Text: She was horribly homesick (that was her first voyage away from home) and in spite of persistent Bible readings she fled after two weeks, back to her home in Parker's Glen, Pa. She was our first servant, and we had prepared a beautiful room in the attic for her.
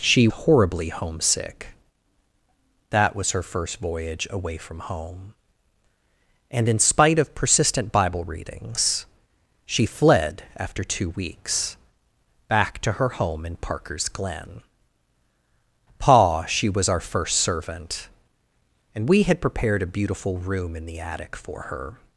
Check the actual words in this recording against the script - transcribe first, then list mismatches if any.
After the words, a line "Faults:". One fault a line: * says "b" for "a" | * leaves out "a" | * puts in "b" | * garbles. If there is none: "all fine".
She horribly homesick (that was her first voyage away from home) and in spite of persistent Bible readings she fled after two weeks, back to her home in Parker's Glen, Pa. She was our first servant, and we had prepared a beautiful room in the attic for her.
Faults:
* leaves out "was"